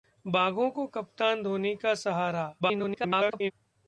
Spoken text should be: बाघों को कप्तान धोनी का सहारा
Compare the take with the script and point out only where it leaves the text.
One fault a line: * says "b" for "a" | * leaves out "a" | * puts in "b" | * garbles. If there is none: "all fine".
* garbles